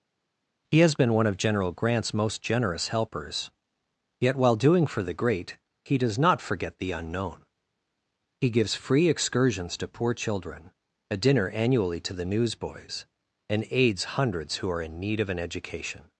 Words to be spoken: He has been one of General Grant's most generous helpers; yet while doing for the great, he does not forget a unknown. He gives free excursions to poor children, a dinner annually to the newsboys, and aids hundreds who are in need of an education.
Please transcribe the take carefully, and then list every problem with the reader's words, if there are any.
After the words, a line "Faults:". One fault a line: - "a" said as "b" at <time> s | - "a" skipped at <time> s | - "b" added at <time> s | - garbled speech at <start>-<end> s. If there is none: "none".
He has been one of General Grant's most generous helpers; yet while doing for the great, he does not forget the unknown. He gives free excursions to poor children, a dinner annually to the newsboys, and aids hundreds who are in need of an education.
Faults:
- "a" said as "the" at 6.8 s